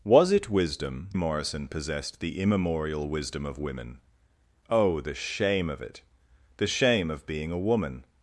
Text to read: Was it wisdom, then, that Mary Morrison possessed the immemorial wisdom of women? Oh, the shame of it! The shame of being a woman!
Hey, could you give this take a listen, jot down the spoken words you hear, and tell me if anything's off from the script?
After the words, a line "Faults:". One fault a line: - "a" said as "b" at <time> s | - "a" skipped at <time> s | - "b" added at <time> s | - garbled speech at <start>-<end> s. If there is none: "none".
Was it wisdom, Morrison possessed the immemorial wisdom of women? Oh, the shame of it! The shame of being a woman!
Faults:
- "then that Mary" skipped at 1.1 s